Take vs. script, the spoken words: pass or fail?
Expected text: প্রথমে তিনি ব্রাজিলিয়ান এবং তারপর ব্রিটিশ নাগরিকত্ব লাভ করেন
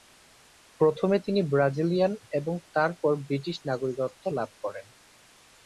pass